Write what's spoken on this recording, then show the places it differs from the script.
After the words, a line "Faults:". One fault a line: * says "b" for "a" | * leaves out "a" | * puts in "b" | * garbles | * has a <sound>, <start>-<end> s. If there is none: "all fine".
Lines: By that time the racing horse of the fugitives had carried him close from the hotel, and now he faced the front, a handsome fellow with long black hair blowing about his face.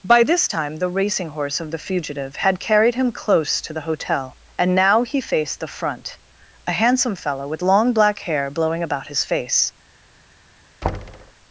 By this time the racing horse of the fugitive had carried him close to the hotel, and now he faced the front, a handsome fellow with long black hair blowing about his face.
Faults:
* says "this" for "that"
* says "fugitive" for "fugitives"
* says "to" for "from"
* has a thud, 10.8-11.3 s